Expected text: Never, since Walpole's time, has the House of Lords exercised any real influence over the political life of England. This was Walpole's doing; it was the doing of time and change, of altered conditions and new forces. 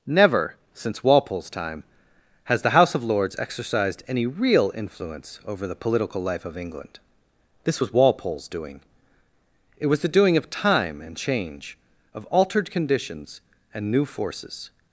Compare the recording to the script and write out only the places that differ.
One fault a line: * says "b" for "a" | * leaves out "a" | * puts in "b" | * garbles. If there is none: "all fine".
all fine